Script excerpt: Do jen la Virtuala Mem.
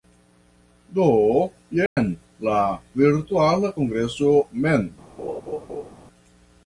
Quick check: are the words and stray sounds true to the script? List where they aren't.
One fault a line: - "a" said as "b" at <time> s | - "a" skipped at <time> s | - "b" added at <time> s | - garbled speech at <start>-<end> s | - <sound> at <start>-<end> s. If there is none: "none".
- dropout at 1.9-2.0 s
- "Kongreso" added at 3.8 s
- laugh at 5.2-5.9 s